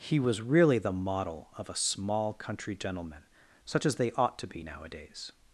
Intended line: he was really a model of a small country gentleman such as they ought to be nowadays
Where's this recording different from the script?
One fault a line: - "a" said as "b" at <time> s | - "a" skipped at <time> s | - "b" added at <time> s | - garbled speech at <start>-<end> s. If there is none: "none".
- "a" said as "the" at 0.8 s